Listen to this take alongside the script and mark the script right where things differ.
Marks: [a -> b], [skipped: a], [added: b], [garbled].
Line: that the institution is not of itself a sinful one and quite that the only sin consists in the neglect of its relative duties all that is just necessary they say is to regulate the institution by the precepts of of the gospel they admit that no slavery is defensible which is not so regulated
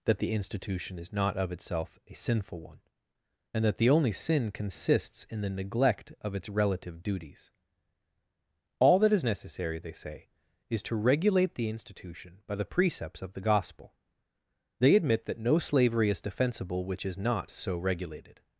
that the institution is not of itself a sinful one and [skipped: quite] that the only sin consists in the neglect of its relative duties all that is [skipped: just] necessary they say is to regulate the institution by the precepts of [skipped: of] the gospel they admit that no slavery is defensible which is not so regulated